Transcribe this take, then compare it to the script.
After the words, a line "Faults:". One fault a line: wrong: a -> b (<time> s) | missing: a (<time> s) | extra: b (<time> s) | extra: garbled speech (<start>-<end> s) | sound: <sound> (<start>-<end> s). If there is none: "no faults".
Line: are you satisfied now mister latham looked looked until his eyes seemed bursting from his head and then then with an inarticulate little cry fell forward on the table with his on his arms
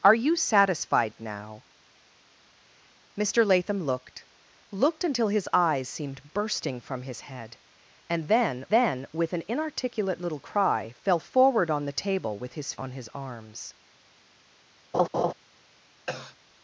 are you satisfied now mister latham looked looked until his eyes seemed bursting from his head and then then with an inarticulate little cry fell forward on the table with his on his arms
Faults:
sound: laugh (14.9-15.3 s)
sound: cough (16.1-16.4 s)